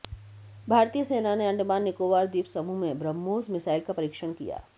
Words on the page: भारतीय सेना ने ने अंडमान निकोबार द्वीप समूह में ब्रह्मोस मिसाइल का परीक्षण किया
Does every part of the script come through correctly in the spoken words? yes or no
no